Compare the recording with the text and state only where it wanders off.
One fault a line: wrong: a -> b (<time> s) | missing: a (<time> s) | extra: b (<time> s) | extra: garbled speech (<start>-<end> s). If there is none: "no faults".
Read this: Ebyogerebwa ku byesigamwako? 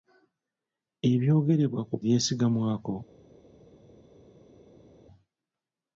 no faults